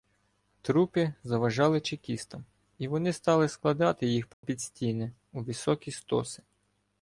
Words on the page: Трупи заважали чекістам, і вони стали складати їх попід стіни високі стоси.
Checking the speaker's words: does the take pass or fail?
fail